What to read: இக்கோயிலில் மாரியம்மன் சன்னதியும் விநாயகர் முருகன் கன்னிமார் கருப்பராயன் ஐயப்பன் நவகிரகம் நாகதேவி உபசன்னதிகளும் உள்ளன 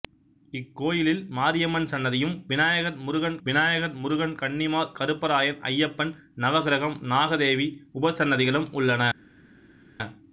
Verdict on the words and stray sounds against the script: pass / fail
fail